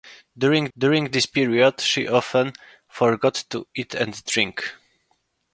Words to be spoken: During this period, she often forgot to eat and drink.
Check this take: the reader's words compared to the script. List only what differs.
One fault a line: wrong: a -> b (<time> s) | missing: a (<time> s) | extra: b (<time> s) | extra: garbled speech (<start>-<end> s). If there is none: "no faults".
extra: during (0.8 s)